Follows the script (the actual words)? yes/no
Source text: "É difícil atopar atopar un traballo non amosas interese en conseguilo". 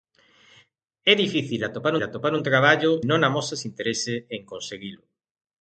yes